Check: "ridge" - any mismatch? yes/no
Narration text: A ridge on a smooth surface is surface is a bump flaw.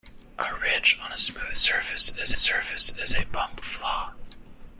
no